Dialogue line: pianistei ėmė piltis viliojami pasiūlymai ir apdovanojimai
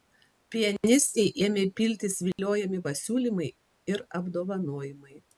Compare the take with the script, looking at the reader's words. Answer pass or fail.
pass